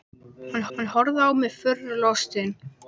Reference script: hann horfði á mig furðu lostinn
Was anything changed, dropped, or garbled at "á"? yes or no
no